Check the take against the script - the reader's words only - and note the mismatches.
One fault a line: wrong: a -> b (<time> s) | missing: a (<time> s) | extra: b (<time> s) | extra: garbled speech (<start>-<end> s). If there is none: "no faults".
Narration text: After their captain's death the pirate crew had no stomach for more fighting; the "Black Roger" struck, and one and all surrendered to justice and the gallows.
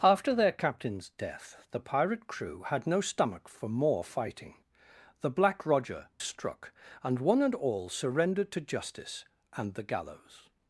no faults